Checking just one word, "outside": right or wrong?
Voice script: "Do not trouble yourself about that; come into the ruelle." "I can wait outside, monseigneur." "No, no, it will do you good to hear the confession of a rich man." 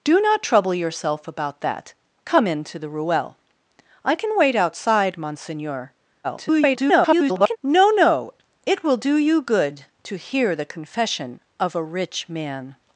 right